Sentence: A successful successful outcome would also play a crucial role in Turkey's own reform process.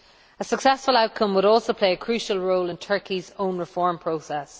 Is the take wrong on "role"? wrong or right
right